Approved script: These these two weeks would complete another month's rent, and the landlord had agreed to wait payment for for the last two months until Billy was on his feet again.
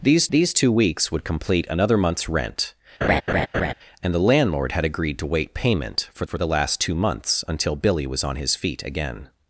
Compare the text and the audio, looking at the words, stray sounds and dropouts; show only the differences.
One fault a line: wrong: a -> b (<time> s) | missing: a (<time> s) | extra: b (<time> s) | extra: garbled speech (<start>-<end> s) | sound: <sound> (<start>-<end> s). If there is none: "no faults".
sound: laugh (3.0-3.7 s)